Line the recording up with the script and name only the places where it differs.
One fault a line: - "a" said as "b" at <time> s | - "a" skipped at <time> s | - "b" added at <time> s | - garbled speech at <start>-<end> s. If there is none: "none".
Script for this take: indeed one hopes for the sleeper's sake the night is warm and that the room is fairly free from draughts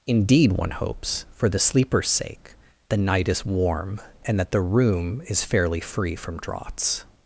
none